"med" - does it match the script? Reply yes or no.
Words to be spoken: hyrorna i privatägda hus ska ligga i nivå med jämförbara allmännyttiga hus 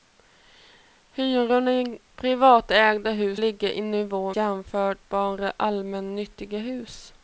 no